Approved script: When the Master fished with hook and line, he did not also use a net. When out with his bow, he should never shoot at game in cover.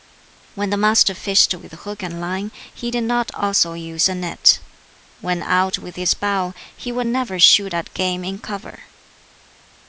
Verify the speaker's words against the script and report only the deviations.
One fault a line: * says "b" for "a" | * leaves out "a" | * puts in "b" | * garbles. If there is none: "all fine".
* says "would" for "should"